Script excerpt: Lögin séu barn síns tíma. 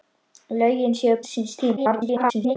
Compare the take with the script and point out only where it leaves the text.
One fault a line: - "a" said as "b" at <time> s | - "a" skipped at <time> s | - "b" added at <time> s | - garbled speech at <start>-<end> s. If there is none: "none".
- "barn" skipped at 1.1 s
- garbled speech at 1.8-2.6 s